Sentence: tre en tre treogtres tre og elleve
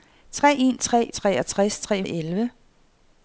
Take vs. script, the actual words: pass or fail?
pass